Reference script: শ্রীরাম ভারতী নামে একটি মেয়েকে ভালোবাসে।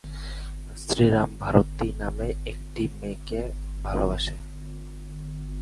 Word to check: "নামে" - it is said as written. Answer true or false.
true